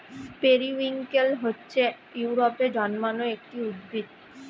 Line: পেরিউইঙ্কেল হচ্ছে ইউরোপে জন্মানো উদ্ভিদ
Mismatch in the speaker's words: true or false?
true